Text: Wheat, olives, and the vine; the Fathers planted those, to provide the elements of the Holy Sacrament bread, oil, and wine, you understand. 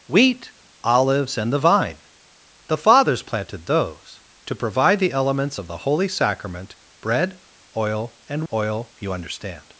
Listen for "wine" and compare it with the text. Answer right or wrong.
wrong